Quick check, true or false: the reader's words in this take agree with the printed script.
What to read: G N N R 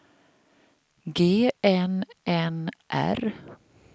true